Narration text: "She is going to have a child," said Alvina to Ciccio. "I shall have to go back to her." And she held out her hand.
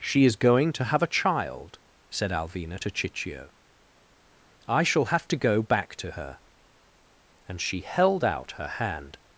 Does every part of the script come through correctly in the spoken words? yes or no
yes